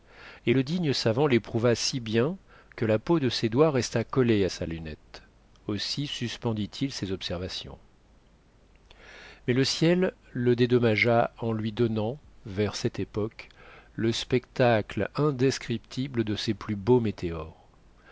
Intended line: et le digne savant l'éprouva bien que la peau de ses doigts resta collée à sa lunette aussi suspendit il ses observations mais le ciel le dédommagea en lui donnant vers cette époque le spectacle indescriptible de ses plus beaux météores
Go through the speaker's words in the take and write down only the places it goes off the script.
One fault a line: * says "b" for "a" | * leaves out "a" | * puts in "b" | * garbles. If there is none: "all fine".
* puts in "si"